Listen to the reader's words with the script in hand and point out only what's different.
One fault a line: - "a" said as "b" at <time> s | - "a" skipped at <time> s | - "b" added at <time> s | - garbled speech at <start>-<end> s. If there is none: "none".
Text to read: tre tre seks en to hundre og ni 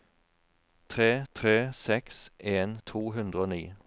none